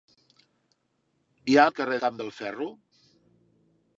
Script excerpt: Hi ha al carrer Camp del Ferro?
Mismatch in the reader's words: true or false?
false